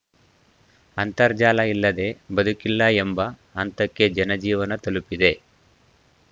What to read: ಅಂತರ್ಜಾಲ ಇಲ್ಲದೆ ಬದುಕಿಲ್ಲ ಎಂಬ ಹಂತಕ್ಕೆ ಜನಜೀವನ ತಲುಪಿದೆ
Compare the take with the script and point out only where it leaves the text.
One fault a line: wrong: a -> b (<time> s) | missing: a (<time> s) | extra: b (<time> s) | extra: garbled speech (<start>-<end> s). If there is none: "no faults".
no faults